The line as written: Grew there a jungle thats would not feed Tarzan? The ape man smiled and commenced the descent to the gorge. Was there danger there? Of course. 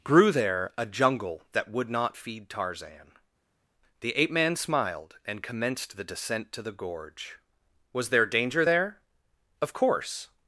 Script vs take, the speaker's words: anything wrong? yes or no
yes